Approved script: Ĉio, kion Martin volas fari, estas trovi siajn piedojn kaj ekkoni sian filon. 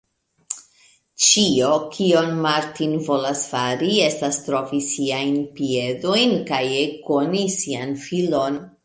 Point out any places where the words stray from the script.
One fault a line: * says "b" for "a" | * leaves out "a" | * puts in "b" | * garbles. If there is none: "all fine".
all fine